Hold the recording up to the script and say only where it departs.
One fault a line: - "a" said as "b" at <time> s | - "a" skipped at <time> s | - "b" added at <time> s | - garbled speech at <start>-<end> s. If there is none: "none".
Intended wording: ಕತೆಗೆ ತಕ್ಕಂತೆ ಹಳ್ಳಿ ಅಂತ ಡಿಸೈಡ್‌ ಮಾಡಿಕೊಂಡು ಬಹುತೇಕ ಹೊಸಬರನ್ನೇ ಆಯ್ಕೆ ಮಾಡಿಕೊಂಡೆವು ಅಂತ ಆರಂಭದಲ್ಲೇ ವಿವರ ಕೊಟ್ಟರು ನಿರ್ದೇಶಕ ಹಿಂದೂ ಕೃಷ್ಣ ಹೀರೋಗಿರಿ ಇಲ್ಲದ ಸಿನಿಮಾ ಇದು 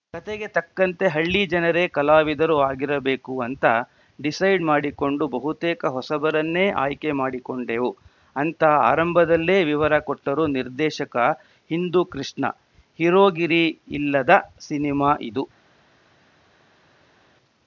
- "ಜನರೇ ಕಲಾವಿದರು ಆಗಿರಬೇಕು" added at 1.5 s